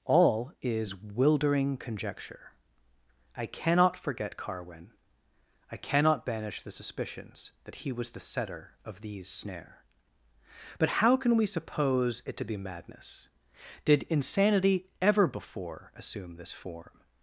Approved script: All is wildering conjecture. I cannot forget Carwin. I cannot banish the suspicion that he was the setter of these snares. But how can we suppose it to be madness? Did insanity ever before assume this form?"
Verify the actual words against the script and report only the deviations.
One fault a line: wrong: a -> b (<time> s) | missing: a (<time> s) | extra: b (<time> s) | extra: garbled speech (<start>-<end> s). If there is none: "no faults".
wrong: suspicion -> suspicions (6.7 s)
wrong: snares -> snare (9.3 s)